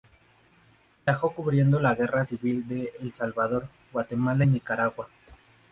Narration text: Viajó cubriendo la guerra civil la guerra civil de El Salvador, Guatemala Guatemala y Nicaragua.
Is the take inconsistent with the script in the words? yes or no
yes